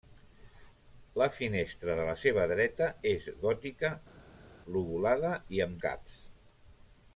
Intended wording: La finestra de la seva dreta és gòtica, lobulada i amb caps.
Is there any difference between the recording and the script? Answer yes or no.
no